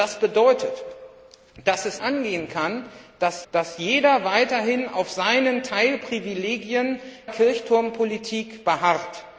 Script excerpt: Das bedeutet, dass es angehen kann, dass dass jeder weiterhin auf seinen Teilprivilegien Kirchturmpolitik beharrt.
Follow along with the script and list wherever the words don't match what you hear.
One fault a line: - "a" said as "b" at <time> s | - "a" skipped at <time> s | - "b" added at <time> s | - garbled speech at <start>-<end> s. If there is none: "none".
none